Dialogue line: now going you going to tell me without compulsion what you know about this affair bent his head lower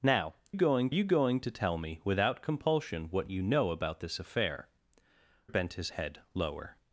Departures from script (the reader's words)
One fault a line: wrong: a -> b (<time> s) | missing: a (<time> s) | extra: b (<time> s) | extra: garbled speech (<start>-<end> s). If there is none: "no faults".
no faults